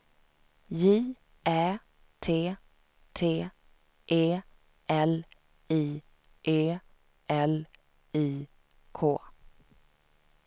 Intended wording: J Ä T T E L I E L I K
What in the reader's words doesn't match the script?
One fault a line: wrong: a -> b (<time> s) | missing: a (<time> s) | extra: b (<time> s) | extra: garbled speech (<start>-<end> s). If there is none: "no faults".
no faults